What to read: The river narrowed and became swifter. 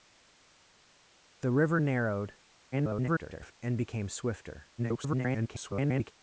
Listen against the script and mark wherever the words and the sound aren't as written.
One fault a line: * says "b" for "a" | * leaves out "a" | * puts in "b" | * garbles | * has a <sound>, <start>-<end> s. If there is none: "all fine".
* garbles
* garbles